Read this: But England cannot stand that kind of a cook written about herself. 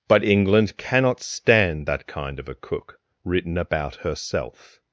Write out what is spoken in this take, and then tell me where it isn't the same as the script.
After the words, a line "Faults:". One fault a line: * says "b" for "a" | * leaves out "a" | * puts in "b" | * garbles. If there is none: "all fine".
But England cannot stand that kind of a cook written about herself.
Faults:
all fine